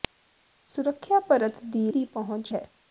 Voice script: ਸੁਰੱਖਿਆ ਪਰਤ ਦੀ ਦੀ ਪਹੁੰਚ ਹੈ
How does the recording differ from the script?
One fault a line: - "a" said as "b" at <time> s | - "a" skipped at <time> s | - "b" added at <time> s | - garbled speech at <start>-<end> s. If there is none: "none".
none